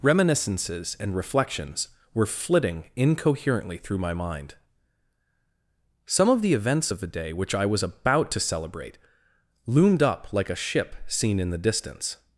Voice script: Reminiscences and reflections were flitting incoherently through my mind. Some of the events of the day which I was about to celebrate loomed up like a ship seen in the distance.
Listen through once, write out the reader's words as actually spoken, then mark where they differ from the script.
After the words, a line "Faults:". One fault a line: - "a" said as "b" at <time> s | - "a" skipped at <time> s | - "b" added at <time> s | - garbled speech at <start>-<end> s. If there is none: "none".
Reminiscences and reflections were flitting incoherently through my mind. Some of the events of the day which I was about to celebrate loomed up like a ship seen in the distance.
Faults:
none